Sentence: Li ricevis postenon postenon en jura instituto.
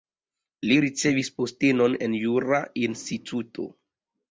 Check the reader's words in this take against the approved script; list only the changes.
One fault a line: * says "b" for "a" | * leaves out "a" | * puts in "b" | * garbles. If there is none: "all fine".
* leaves out "postenon"